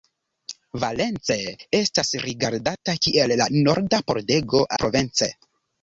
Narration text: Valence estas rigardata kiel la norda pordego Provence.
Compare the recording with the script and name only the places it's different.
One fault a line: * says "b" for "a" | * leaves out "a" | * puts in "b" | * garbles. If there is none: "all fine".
all fine